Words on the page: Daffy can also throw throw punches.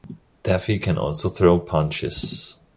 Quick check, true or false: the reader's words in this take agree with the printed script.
false